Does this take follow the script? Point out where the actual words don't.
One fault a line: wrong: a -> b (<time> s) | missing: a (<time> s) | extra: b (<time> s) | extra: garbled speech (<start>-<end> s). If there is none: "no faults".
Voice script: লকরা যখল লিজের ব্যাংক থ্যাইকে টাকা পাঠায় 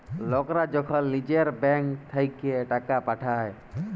no faults